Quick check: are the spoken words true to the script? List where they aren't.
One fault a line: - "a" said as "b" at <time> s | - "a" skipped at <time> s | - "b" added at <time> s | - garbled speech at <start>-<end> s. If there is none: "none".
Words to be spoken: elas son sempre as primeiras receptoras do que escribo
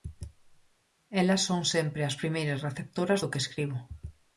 none